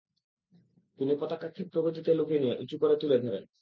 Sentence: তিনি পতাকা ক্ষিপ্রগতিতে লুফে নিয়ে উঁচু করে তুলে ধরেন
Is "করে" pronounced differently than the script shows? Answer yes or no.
no